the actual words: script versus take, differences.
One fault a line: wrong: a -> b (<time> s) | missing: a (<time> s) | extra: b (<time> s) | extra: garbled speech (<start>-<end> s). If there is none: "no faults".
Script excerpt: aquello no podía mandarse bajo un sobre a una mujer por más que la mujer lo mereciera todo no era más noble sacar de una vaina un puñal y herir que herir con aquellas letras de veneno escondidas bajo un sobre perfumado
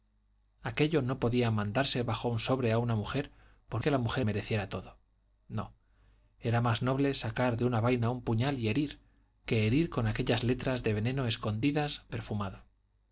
missing: más (3.8 s)
missing: lo (4.3 s)
missing: bajo un sobre (12.1 s)